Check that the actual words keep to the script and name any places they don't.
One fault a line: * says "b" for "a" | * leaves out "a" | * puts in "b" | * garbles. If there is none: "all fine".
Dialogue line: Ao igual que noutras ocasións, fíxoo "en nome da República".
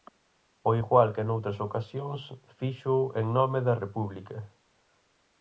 all fine